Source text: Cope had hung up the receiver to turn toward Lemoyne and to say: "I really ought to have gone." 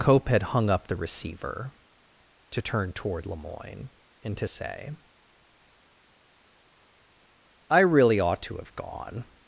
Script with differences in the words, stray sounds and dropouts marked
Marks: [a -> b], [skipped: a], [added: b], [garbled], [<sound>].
Cope had hung up the receiver to turn toward Lemoyne and to say: "I really ought to have gone."